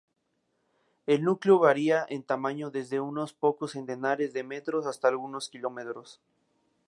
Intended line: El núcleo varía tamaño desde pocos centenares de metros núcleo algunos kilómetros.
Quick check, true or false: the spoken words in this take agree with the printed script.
false